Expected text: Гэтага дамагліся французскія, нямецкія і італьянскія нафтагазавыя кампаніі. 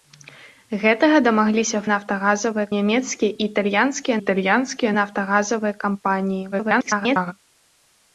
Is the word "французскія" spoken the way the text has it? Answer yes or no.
no